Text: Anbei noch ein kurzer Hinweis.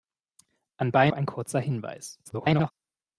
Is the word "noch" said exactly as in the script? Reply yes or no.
no